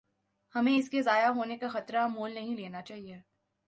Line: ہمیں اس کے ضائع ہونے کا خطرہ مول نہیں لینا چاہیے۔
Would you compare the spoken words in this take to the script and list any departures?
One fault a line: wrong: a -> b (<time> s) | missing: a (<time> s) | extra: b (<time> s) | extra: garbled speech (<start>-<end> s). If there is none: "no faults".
no faults